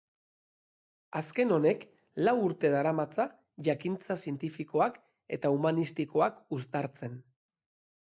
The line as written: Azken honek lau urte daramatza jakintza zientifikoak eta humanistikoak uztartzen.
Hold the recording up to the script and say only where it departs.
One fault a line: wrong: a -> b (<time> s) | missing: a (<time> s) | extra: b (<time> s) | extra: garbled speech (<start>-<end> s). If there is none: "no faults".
no faults